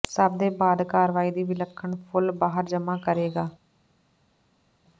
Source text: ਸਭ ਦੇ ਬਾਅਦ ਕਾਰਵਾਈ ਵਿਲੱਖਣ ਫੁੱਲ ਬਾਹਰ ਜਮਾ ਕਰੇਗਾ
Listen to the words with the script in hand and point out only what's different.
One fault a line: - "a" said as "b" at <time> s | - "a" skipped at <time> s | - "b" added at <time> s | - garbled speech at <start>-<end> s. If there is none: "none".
- "ਦੀ" added at 1.3 s